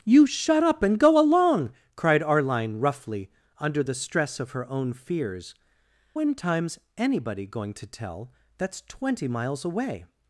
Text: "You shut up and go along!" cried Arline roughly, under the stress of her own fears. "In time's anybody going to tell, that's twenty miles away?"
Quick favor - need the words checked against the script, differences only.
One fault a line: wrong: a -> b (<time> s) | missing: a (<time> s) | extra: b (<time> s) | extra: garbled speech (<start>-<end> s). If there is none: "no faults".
no faults